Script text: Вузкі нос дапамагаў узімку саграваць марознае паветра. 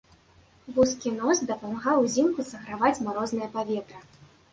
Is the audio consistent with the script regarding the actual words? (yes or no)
yes